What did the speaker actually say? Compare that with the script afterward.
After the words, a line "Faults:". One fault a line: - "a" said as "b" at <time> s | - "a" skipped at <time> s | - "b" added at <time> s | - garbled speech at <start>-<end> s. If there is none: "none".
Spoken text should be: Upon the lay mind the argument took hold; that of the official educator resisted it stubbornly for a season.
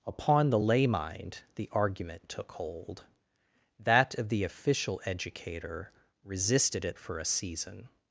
Upon the lay mind the argument took hold; that of the official educator resisted it for a season.
Faults:
- "stubbornly" skipped at 7.0 s